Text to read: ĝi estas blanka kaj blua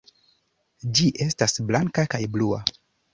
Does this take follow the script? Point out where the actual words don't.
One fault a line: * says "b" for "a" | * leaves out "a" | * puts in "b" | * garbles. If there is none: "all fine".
all fine